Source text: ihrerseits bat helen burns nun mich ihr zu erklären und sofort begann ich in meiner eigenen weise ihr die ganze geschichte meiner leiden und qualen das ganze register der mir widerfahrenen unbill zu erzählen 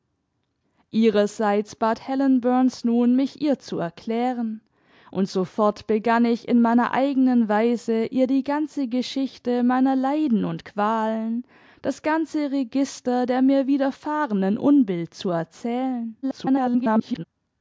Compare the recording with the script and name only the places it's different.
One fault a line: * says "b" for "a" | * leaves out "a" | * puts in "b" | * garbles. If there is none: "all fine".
* garbles